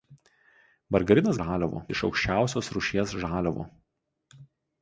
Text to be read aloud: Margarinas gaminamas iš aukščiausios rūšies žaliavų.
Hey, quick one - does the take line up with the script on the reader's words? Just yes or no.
no